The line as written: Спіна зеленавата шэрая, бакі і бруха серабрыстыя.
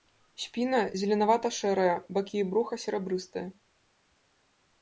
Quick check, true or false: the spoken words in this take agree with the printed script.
true